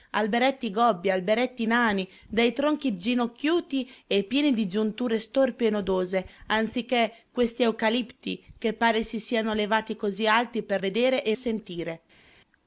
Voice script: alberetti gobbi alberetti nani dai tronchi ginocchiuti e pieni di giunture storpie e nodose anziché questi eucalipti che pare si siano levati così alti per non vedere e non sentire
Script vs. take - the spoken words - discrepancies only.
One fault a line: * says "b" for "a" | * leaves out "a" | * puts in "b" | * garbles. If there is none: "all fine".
* leaves out "non"
* leaves out "non"